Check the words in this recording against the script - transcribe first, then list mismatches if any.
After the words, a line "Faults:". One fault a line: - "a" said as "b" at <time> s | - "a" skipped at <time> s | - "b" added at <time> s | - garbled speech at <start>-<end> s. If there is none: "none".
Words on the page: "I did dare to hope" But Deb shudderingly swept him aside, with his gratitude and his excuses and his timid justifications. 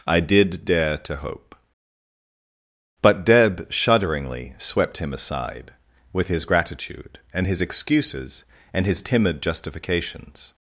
"I did dare to hope" But Deb shudderingly swept him aside, with his gratitude and his excuses and his timid justifications.
Faults:
none